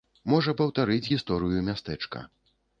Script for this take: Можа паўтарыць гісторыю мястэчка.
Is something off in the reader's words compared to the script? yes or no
no